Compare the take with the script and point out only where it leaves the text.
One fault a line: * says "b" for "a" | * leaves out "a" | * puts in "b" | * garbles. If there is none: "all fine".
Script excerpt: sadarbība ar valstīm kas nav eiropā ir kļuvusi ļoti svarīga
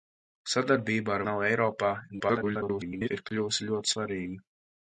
* leaves out "valstīm kas"
* garbles